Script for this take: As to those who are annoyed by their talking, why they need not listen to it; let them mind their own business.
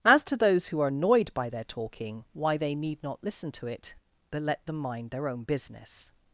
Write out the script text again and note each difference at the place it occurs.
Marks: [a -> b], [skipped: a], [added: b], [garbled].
As to those who are annoyed by their talking, why they need not listen to it; [added: but] let them mind their own business.